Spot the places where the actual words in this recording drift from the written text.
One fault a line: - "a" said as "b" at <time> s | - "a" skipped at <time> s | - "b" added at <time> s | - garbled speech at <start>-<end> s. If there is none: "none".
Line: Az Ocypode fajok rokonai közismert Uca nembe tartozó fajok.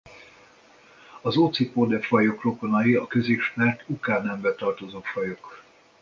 - "a" added at 3.0 s